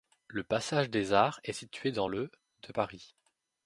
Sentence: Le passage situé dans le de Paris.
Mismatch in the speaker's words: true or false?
true